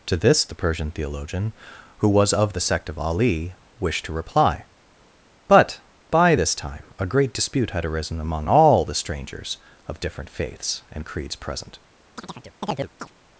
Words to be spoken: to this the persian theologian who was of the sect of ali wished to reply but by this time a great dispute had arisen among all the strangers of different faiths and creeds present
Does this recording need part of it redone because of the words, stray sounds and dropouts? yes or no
yes